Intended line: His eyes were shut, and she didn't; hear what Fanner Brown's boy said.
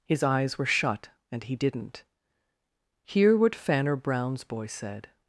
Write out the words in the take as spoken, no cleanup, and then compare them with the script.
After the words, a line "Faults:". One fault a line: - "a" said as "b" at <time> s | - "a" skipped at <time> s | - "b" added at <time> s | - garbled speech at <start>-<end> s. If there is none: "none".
His eyes were shut, and he didn't; hear what Fanner Brown's boy said.
Faults:
- "she" said as "he" at 1.4 s